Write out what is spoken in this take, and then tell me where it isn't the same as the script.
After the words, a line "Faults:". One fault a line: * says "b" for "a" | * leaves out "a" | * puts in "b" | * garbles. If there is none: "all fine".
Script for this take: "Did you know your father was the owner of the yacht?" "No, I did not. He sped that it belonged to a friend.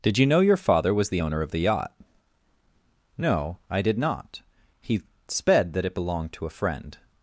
"Did you know your father was the owner of the yacht?" "No, I did not. He sped that it belonged to a friend.
Faults:
all fine